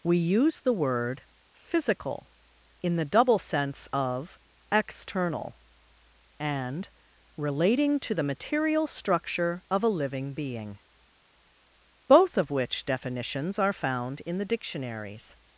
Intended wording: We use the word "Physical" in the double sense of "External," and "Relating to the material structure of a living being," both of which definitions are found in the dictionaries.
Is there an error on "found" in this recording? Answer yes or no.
no